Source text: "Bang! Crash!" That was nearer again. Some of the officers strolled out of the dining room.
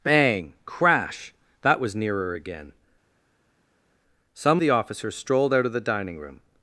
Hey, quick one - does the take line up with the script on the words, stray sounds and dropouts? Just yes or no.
no